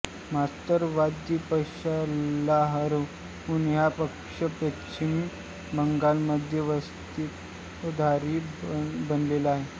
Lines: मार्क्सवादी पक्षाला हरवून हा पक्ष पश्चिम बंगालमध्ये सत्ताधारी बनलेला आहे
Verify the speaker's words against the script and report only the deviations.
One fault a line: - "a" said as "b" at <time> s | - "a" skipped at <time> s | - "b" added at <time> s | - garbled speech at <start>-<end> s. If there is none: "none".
none